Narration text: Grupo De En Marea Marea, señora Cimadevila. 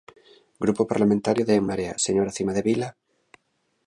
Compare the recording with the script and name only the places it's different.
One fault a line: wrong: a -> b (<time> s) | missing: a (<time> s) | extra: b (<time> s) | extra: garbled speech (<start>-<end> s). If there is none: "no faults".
extra: Parlamentario (0.9 s)
missing: Marea (1.9 s)